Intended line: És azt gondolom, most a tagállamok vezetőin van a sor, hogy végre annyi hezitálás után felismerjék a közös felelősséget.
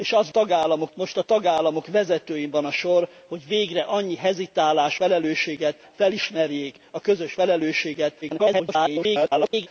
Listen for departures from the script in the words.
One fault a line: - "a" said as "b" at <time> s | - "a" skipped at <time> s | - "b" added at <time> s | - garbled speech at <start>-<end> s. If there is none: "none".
- "gondolom" said as "tagállamok" at 0.3 s
- "után" said as "felelősséget" at 4.9 s
- garbled speech at 8.2-9.7 s